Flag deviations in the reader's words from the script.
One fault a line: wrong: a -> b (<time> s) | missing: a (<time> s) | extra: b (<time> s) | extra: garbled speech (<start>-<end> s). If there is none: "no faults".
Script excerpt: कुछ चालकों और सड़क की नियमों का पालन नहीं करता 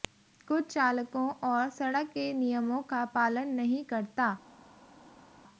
wrong: की -> के (2.1 s)